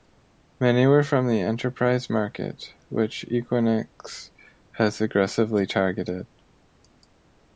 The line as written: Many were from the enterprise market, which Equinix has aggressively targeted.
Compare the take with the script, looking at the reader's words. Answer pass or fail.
pass